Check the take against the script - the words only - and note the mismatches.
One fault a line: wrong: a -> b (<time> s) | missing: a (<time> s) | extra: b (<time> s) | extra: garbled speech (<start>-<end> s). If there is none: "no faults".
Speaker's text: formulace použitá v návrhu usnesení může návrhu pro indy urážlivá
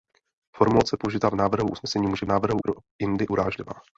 no faults